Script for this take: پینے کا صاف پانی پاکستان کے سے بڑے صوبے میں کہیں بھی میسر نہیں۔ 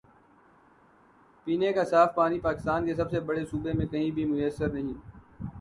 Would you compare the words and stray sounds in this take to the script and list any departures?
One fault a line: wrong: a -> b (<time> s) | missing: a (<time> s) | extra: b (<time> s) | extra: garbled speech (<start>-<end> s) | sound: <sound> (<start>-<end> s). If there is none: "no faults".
extra: سب (3.0 s)